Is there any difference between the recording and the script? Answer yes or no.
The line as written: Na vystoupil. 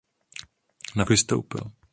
no